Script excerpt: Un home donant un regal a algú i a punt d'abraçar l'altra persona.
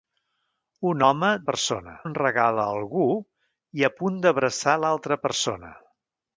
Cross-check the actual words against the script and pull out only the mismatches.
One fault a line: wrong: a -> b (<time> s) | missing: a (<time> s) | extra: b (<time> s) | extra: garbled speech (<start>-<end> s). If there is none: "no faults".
wrong: donant -> persona (1.5 s)